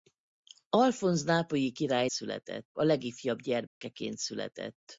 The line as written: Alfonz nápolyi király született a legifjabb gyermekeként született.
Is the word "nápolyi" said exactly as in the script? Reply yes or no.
yes